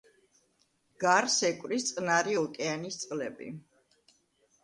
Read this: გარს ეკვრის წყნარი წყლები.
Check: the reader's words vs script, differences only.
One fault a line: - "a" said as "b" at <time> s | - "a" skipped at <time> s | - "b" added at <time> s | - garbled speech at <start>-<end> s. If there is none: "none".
- "ოკეანის" added at 2.4 s